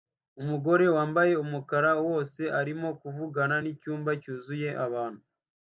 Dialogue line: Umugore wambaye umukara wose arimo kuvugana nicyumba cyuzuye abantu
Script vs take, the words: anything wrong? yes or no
no